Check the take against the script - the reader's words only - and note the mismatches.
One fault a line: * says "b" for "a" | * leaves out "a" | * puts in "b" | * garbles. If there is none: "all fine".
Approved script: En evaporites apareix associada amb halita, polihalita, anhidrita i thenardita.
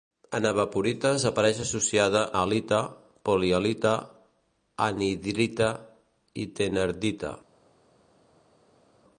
* leaves out "amb"